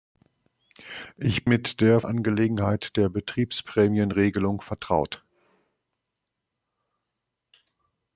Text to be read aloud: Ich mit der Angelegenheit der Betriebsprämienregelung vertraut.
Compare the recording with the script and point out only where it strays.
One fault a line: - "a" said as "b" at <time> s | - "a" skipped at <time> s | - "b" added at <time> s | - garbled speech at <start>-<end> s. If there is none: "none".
none